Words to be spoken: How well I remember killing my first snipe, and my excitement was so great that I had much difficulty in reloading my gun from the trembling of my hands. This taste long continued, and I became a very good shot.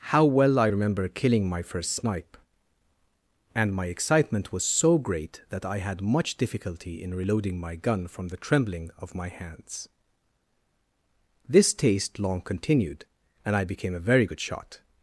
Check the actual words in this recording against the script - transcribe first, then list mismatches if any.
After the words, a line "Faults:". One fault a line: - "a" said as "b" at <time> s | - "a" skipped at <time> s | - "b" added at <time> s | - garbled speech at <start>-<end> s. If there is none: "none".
How well I remember killing my first snipe, and my excitement was so great that I had much difficulty in reloading my gun from the trembling of my hands. This taste long continued, and I became a very good shot.
Faults:
none